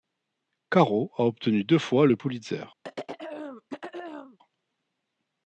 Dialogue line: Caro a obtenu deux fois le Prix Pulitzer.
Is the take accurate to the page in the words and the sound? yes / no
no